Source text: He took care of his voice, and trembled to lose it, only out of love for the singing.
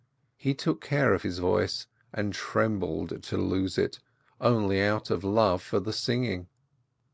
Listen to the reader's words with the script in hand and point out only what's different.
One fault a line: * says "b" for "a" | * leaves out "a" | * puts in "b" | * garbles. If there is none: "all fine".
all fine